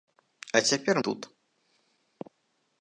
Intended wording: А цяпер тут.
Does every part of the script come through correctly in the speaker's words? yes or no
yes